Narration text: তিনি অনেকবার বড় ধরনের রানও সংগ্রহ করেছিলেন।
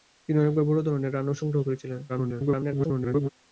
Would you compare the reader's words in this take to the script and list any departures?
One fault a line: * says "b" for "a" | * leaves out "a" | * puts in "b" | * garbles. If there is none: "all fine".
* garbles